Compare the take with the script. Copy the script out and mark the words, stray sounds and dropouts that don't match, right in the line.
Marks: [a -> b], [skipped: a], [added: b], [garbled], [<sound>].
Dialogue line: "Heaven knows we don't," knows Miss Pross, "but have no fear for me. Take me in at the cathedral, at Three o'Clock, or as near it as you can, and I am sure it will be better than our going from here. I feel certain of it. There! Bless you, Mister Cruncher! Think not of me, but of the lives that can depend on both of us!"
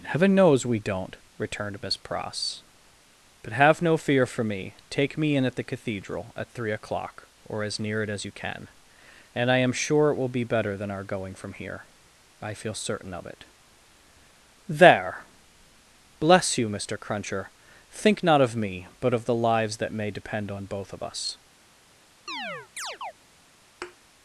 "Heaven knows we don't," [knows -> returned] Miss Pross, "but have no fear for me. Take me in at the cathedral, at Three o'Clock, or as near it as you can, and I am sure it will be better than our going from here. I feel certain of it. There! Bless you, Mister Cruncher! Think not of me, but of the lives that [can -> may] depend on both of us!" [chirp] [thud]